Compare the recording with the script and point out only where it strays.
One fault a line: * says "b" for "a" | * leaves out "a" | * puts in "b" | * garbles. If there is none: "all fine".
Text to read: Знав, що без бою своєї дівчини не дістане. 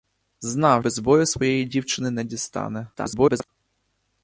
* leaves out "що"
* garbles